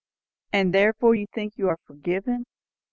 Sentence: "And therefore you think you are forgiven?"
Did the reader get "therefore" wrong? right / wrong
right